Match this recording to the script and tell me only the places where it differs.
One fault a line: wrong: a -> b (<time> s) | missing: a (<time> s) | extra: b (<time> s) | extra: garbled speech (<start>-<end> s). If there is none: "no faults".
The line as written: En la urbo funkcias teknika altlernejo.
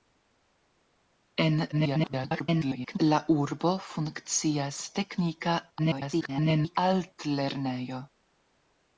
extra: garbled speech (1.7-3.0 s)
extra: garbled speech (5.8-6.8 s)